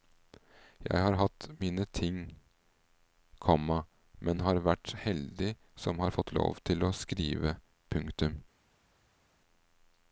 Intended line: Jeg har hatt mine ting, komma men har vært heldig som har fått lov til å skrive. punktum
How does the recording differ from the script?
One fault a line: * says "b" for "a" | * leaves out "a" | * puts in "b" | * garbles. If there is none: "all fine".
all fine